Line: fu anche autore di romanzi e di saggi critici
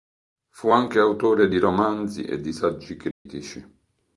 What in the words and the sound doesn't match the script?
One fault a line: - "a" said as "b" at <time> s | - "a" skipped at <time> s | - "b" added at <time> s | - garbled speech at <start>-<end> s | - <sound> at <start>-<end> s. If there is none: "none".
- dropout at 3.1-3.3 s